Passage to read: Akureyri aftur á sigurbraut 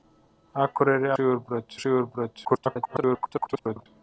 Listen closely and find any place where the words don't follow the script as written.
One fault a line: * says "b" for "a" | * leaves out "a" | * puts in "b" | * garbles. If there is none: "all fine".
* says "sigurbraut" for "aftur"
* garbles